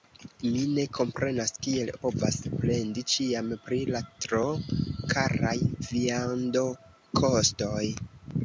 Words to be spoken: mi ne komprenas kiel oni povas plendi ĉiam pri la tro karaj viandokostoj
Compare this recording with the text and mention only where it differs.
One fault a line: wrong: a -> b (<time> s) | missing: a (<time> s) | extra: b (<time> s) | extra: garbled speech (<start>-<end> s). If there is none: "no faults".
missing: oni (1.9 s)